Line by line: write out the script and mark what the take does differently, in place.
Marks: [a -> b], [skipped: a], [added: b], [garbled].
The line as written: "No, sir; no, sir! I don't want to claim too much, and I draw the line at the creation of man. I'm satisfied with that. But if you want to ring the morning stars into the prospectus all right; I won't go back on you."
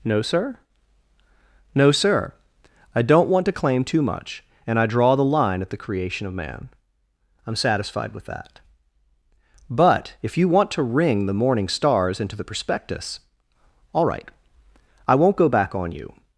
"No, sir; no, sir! I don't want to claim too much, and I draw the line at the creation of man. I'm satisfied with that. But if you want to ring the morning stars into the prospectus all right; I won't go back on you."